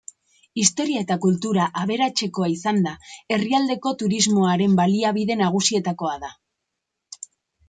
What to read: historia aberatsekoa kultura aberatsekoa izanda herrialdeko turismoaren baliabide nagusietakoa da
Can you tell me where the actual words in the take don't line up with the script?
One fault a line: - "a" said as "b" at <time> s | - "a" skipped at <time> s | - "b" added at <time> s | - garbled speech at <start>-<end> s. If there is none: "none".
- "aberatsekoa" said as "eta" at 1.1 s